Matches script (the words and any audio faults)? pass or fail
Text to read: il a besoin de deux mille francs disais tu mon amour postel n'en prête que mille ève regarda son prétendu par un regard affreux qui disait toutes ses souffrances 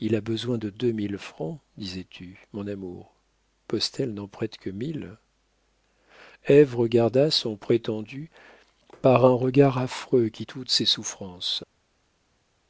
fail